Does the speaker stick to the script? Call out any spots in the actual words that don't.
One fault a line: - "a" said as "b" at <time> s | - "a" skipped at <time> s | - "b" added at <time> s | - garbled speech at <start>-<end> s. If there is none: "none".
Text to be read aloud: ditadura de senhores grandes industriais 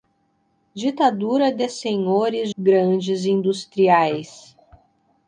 none